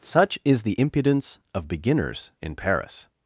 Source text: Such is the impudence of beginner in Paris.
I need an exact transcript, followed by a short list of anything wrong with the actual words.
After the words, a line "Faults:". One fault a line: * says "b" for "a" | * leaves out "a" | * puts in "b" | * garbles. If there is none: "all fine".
Such is the impudence of beginners in Paris.
Faults:
* says "beginners" for "beginner"